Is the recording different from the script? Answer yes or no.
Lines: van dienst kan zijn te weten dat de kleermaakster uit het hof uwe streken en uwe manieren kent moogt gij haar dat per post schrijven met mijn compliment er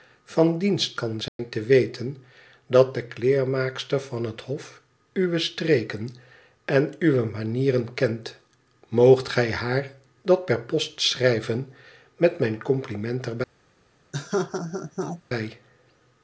yes